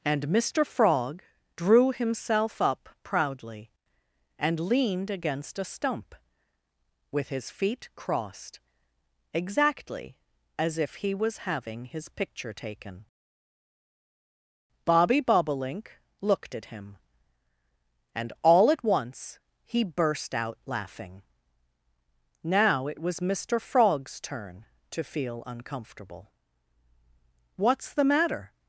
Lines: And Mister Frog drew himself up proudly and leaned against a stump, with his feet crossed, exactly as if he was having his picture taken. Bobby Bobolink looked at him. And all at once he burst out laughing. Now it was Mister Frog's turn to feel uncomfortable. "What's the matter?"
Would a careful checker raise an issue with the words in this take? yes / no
no